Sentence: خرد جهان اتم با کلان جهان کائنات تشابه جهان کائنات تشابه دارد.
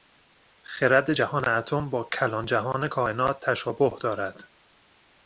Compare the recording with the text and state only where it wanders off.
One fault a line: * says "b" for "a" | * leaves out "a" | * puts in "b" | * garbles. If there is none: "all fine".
* leaves out "جهان کائنات تشابه"